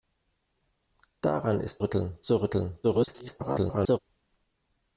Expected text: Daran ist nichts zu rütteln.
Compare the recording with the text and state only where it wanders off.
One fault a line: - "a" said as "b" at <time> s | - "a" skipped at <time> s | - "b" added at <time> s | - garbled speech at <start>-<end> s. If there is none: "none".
- "nichts" said as "rütteln" at 1.8 s
- garbled speech at 2.8-4.0 s